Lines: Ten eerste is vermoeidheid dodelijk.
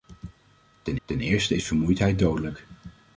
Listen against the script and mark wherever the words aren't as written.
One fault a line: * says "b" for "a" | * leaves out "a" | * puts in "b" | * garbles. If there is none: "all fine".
* puts in "ten"